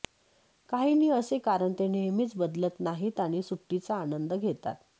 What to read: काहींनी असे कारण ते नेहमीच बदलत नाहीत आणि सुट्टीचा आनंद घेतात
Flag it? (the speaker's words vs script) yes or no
no